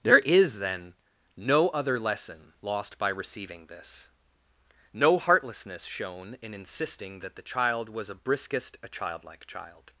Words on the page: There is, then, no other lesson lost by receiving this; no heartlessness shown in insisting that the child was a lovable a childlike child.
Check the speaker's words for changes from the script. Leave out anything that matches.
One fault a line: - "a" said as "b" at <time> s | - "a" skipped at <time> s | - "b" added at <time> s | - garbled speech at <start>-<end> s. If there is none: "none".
- "lovable" said as "briskest" at 8.2 s